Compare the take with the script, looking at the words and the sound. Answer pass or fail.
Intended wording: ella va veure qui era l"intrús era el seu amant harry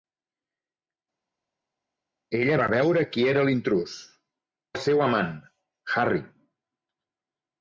fail